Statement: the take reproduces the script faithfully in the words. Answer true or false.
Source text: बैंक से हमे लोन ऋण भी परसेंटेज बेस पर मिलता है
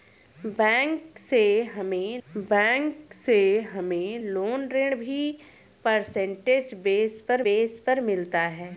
false